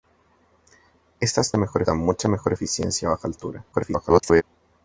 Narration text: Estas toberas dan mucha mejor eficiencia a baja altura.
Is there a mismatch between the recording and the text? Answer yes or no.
yes